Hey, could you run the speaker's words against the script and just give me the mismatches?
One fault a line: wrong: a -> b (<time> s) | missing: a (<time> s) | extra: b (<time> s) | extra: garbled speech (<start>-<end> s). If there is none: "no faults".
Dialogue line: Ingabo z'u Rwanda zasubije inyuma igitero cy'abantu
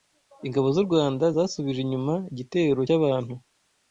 no faults